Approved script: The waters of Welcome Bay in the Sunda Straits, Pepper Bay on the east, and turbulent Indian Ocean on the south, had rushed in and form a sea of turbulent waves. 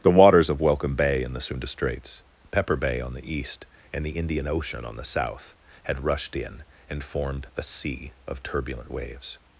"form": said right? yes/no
no